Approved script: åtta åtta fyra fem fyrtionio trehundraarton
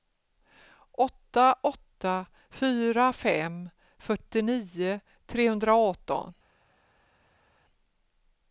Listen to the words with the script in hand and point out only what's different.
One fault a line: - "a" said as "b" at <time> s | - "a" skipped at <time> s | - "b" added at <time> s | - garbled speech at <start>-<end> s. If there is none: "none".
none